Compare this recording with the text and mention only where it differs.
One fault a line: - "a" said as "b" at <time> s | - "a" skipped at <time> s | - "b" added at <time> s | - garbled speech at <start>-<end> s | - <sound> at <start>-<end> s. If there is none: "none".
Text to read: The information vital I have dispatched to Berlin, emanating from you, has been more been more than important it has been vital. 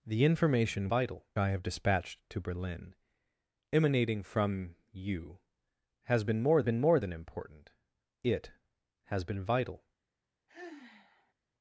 - sigh at 10.5-11.3 s